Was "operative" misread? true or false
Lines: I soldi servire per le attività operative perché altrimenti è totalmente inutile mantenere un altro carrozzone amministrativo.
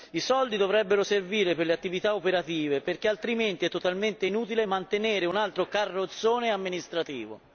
false